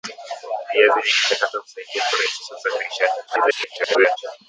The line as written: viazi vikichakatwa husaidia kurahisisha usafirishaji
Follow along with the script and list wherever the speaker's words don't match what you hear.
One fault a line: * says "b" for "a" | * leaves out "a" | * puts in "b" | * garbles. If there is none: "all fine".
* garbles